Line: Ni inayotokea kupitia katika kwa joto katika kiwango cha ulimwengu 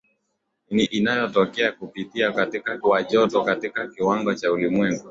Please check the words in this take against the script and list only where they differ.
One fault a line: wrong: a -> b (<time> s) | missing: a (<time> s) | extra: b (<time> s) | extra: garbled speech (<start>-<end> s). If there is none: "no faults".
no faults